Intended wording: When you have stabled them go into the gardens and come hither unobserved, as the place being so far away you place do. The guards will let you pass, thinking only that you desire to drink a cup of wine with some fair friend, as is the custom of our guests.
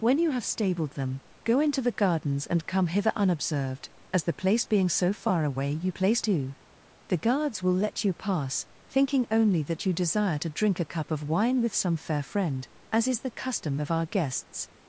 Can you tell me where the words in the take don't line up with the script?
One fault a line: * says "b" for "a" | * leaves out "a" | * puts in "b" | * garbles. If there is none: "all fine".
all fine